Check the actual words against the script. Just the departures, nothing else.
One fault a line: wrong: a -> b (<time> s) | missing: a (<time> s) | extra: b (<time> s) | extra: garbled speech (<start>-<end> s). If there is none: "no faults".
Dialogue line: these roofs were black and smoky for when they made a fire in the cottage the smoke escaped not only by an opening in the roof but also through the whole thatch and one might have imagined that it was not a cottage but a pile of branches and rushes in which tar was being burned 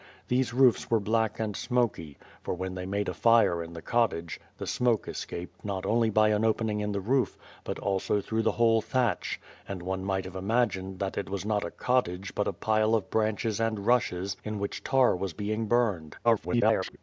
extra: garbled speech (16.2-17.0 s)